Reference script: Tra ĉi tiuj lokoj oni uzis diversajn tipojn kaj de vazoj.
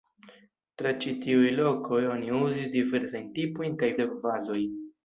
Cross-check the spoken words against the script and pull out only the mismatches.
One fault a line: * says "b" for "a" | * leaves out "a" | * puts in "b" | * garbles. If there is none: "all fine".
all fine